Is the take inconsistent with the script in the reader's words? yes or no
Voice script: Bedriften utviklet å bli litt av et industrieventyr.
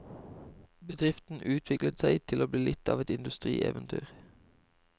yes